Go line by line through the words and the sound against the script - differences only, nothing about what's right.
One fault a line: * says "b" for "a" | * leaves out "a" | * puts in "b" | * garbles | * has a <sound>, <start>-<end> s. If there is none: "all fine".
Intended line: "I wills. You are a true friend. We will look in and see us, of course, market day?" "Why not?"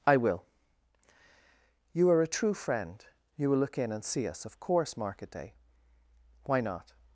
* says "will" for "wills"
* says "You" for "We"